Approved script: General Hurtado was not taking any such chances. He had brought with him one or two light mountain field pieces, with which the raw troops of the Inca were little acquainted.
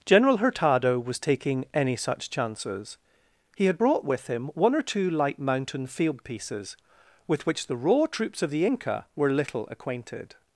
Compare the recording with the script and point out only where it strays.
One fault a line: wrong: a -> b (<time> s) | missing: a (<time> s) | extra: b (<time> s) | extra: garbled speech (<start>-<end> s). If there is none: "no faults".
missing: not (1.2 s)